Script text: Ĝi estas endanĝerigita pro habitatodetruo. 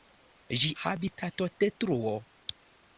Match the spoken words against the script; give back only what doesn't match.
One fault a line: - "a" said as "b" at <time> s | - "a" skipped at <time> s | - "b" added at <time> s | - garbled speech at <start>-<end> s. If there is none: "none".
- "estas endanĝerigita pro" skipped at 0.7 s